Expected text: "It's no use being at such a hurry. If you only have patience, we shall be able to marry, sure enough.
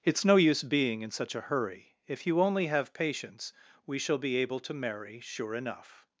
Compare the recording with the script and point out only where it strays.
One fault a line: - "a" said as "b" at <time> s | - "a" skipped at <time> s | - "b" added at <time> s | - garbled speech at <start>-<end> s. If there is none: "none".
- "at" said as "in" at 1.0 s